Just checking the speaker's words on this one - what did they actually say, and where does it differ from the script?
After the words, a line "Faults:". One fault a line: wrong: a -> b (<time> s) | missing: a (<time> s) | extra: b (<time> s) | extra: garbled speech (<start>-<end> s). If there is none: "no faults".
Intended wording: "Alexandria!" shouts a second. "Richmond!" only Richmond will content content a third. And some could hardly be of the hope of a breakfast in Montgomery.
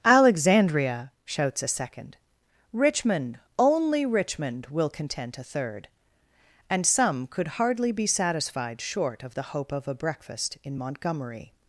"Alexandria!" shouts a second. "Richmond!" only Richmond will content a third. And some could hardly be satisfied short of the hope of a breakfast in Montgomery.
Faults:
missing: content (5.4 s)
extra: satisfied short (8.1 s)